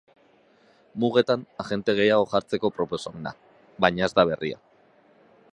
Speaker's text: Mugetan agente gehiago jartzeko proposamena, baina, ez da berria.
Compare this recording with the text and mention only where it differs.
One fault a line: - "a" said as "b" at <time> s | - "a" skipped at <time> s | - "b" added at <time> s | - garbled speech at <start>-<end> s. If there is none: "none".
none